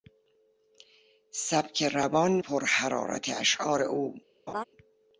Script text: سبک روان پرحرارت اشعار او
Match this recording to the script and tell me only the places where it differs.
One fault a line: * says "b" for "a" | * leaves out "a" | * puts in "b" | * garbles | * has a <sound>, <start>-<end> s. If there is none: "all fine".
* has a laugh, 4.5-4.6 s